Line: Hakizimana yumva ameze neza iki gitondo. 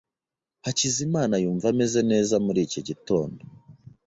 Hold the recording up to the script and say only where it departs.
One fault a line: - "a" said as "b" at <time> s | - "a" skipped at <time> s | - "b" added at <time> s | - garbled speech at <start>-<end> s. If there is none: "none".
- "muri" added at 2.5 s